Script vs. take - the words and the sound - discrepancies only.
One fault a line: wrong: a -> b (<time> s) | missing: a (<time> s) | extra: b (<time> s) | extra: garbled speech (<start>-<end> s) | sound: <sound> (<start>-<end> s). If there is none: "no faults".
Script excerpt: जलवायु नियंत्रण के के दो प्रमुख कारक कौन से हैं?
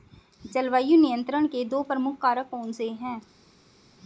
missing: के (1.6 s)